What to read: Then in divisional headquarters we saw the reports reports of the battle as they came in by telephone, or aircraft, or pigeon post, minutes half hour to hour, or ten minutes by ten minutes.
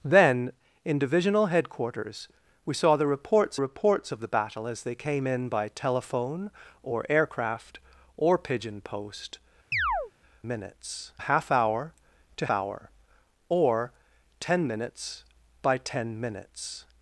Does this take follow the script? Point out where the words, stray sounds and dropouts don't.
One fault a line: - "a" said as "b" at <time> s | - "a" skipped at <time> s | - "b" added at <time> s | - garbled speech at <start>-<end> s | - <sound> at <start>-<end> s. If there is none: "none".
- chirp at 9.7-10.1 s